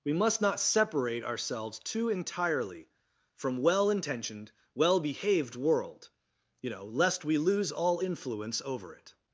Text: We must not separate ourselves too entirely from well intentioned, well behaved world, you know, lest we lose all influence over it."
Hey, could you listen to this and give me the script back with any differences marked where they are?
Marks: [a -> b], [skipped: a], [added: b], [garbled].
We must not separate ourselves too entirely from well intentioned, well behaved world, you know, lest we lose all influence over it."